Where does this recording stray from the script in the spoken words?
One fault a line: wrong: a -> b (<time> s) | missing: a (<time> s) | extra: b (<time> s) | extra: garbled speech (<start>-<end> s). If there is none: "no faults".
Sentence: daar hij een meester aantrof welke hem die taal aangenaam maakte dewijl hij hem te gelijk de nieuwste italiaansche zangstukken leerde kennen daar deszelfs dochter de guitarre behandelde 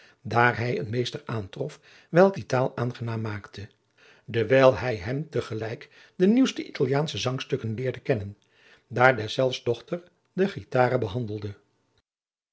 missing: hem (2.4 s)